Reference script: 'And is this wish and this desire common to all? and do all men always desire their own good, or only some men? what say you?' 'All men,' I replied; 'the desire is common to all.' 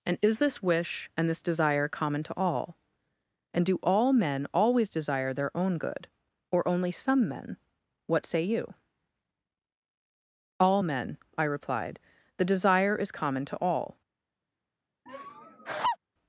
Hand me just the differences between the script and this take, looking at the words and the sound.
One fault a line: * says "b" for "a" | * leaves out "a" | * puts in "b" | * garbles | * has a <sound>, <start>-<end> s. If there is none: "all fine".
* has a laugh, 15.1-16.0 s